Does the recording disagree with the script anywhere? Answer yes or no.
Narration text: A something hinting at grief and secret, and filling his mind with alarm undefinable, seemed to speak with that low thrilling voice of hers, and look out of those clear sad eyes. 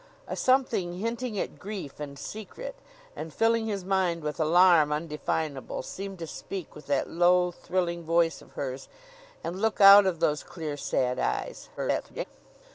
yes